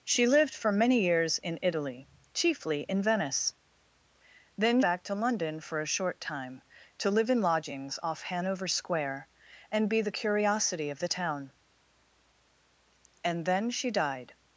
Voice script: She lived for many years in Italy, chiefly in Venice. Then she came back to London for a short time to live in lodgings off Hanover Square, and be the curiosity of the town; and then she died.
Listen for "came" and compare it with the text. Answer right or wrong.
wrong